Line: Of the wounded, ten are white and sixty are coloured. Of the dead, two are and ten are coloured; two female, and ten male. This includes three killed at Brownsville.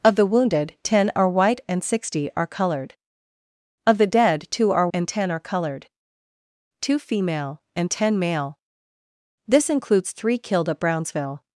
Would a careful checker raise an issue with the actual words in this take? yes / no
no